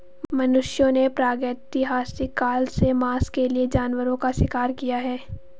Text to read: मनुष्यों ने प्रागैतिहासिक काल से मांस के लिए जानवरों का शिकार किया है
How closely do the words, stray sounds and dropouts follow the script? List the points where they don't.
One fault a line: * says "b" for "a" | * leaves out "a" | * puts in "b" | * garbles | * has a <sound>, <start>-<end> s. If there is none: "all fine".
all fine